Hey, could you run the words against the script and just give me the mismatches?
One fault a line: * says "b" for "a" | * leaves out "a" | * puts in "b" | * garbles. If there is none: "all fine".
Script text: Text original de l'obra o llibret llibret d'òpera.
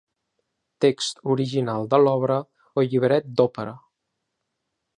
* leaves out "llibret"